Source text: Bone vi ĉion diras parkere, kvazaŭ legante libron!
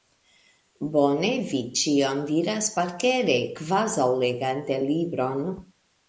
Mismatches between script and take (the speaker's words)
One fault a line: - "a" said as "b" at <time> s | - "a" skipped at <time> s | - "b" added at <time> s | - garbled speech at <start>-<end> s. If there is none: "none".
none